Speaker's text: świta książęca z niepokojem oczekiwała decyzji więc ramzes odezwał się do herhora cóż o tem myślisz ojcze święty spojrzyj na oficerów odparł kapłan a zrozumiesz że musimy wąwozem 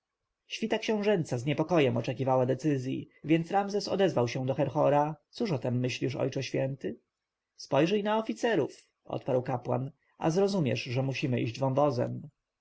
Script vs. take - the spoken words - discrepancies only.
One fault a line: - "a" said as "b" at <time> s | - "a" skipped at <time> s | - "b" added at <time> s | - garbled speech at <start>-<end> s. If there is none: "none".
- "iść" added at 11.4 s